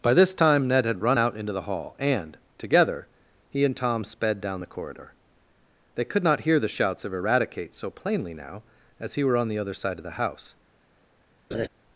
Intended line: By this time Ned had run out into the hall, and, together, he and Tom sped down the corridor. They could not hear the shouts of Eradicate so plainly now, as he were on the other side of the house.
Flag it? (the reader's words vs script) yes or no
no